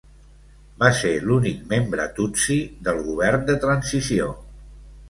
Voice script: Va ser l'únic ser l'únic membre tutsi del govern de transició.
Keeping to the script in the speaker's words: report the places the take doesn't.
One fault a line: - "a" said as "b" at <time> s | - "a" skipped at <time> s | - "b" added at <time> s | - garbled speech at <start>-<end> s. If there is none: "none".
- "ser l'únic" skipped at 1.6 s